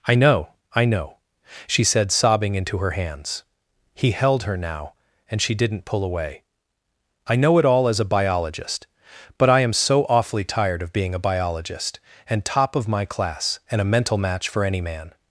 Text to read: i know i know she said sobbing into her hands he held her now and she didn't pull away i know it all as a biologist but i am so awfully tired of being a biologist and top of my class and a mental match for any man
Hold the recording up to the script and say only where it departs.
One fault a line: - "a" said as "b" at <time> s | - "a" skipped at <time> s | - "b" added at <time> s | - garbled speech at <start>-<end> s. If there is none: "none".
none